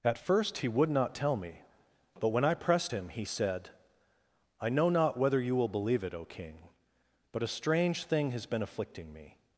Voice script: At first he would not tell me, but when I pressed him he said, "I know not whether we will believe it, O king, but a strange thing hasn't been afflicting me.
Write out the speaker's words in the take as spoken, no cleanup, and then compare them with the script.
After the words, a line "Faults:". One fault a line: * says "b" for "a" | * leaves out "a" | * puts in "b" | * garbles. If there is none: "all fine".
At first he would not tell me, but when I pressed him he said, "I know not whether you will believe it, O king, but a strange thing has been afflicting me.
Faults:
* says "you" for "we"
* says "has" for "hasn't"